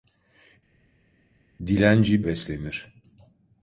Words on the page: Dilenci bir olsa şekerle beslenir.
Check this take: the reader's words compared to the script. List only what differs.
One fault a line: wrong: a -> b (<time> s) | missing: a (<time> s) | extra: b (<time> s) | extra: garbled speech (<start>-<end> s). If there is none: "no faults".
missing: bir olsa şekerle (2.2 s)